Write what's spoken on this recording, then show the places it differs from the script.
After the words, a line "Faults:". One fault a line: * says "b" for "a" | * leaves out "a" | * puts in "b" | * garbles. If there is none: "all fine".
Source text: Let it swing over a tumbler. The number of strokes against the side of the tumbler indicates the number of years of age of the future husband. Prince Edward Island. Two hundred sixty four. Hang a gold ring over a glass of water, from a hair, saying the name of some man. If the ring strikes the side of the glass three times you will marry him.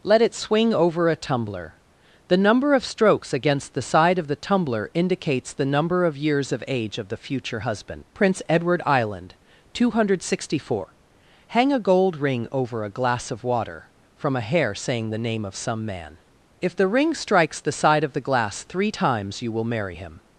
Let it swing over a tumbler. The number of strokes against the side of the tumbler indicates the number of years of age of the future husband. Prince Edward Island. Two hundred sixty four. Hang a gold ring over a glass of water, from a hair, saying the name of some man. If the ring strikes the side of the glass three times you will marry him.
Faults:
all fine